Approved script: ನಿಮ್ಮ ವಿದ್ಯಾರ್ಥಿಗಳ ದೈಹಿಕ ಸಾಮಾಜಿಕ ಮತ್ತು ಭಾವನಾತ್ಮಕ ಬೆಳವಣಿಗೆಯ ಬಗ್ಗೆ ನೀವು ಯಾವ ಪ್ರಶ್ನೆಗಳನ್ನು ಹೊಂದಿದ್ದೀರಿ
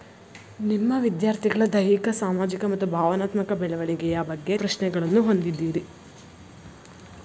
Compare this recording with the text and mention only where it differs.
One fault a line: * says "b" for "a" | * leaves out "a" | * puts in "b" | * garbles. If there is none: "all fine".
* leaves out "ನೀವು ಯಾವ"